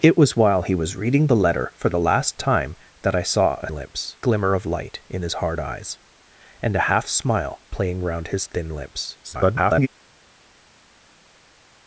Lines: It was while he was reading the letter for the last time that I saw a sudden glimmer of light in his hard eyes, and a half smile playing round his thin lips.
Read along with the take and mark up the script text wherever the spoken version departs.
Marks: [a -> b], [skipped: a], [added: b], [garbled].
It was while he was reading the letter for the last time that I saw a [sudden -> lips] glimmer of light in his hard eyes, and a half smile playing round his thin lips. [garbled]